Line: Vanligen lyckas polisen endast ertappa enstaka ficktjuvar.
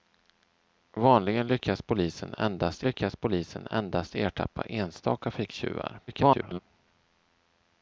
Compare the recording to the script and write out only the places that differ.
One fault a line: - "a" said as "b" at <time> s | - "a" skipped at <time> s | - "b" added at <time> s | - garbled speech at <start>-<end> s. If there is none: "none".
- "lyckas polisen endast" added at 2.8 s
- garbled speech at 6.1-6.6 s